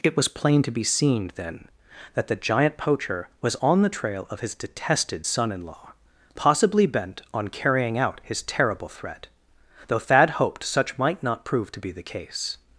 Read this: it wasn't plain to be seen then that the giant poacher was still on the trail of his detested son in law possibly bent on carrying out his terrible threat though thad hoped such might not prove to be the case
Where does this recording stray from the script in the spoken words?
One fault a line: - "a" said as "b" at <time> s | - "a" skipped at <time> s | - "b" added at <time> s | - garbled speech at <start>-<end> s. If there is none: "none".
- "wasn't" said as "was" at 0.2 s
- "still" skipped at 3.5 s